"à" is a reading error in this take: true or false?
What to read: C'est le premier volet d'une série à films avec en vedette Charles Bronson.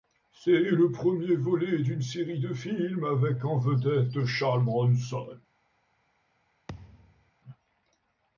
true